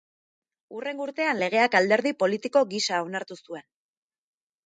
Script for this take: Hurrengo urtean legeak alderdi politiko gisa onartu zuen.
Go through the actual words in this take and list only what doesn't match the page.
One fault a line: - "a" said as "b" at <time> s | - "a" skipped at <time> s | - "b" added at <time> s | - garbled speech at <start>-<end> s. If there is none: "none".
none